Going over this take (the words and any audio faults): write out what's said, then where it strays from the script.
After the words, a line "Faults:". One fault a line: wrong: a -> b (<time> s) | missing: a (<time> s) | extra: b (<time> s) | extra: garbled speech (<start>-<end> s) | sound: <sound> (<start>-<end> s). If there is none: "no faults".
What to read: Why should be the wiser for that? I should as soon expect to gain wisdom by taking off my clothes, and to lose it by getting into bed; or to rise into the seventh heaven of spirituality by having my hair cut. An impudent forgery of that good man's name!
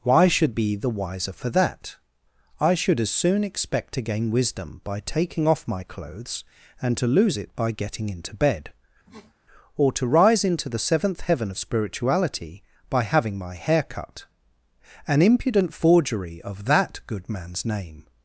Why should be the wiser for that? I should as soon expect to gain wisdom by taking off my clothes, and to lose it by getting into bed; or to rise into the seventh heaven of spirituality by having my hair cut. An impudent forgery of that good man's name!
Faults:
sound: sniff (9.1-9.3 s)